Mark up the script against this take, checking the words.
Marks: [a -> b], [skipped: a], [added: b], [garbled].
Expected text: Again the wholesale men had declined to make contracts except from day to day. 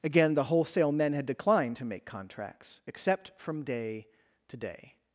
Again the wholesale men had declined to make contracts except from day to day.